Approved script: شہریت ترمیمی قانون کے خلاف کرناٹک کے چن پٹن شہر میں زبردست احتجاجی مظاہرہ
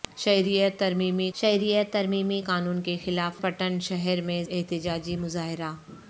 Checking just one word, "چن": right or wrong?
wrong